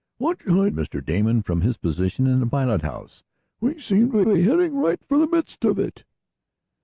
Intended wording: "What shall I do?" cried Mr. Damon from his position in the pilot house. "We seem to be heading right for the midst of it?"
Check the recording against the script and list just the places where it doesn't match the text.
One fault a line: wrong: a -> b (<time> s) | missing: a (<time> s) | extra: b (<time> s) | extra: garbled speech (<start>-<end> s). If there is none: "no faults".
missing: do cried (0.7 s)
extra: to (4.2 s)